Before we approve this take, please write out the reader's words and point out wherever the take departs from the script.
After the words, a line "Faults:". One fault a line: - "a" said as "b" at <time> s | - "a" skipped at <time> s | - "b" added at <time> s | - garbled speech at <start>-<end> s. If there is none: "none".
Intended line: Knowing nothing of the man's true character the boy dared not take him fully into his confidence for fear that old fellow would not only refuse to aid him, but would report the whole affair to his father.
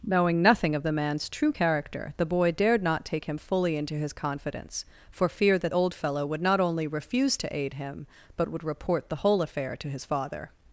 Knowing nothing of the man's true character the boy dared not take him fully into his confidence for fear that old fellow would not only refuse to aid him, but would report the whole affair to his father.
Faults:
none